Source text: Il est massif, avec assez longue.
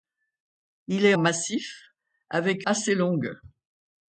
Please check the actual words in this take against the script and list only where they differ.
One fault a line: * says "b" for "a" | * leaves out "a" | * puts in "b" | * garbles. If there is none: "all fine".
all fine